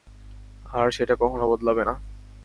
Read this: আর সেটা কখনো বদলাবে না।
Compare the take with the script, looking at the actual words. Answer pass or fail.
pass